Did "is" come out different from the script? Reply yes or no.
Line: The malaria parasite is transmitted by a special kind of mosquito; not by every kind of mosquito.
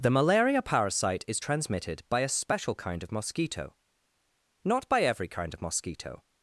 no